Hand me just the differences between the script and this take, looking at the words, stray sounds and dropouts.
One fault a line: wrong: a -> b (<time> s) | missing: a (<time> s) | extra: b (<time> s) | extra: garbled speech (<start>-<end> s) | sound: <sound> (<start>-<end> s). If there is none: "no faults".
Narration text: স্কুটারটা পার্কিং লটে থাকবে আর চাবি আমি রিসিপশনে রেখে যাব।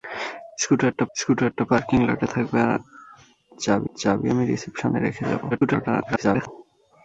extra: স্কুটারটা (1.1 s)
extra: চাবি (4.0 s)
extra: garbled speech (5.5-6.5 s)